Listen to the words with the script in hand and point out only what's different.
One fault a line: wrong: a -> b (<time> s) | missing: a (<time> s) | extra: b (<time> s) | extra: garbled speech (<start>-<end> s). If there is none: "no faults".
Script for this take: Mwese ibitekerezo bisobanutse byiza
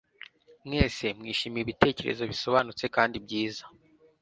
extra: mwishimiye (1.2 s)
extra: kandi (2.9 s)